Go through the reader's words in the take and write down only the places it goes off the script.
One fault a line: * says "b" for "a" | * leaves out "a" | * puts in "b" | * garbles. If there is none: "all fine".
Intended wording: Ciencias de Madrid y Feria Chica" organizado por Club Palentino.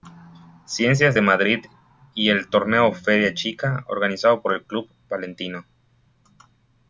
* puts in "el Torneo"
* puts in "el"